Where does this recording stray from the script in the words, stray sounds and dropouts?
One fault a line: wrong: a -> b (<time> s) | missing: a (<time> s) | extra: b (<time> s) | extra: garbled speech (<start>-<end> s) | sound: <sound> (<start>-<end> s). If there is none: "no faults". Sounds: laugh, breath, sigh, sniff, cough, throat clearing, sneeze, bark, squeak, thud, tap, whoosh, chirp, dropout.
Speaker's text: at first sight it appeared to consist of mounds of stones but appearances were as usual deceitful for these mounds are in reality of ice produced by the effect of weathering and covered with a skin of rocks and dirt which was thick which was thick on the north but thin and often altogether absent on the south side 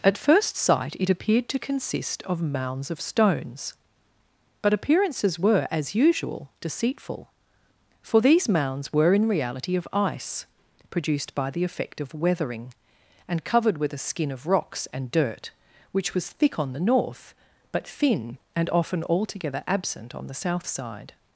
wrong: are -> were (8.9 s)
missing: which was thick (16.6 s)